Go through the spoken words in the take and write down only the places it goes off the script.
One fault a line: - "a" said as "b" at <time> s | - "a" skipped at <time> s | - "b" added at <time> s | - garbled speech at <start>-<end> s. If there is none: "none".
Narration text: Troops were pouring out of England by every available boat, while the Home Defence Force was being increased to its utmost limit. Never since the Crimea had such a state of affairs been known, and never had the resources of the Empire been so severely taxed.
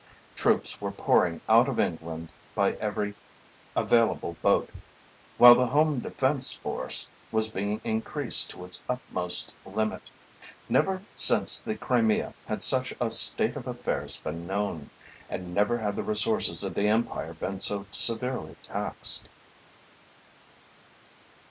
none